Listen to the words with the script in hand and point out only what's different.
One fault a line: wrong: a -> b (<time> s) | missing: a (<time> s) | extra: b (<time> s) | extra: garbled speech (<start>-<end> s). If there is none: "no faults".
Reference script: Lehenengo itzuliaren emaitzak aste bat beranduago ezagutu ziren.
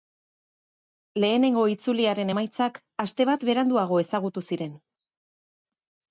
no faults